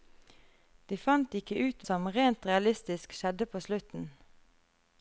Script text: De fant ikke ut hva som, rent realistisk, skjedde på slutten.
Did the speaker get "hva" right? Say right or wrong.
wrong